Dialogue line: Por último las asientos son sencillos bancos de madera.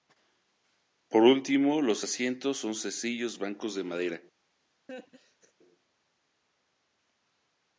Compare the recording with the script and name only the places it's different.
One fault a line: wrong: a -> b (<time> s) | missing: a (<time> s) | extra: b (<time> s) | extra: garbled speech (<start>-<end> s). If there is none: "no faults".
wrong: las -> los (1.8 s)